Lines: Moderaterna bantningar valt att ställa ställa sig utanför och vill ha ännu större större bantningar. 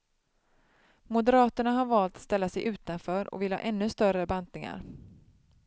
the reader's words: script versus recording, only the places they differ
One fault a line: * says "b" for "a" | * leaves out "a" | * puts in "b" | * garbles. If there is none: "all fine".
* says "har" for "bantningar"
* leaves out "ställa"
* leaves out "större"